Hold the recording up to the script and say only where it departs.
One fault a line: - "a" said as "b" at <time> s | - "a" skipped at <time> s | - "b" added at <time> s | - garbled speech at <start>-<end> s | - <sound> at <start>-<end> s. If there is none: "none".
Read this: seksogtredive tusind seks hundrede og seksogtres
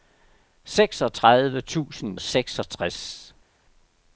- "seks hundrede" skipped at 2.2 s